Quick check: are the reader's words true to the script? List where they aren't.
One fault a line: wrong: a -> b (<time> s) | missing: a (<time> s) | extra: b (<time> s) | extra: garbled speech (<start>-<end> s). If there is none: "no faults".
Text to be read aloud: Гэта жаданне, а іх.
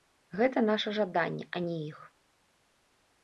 extra: наша (0.7 s)
extra: не (1.7 s)